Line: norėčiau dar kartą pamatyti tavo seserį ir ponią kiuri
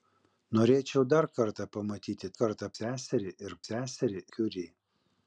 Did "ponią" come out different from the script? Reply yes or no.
yes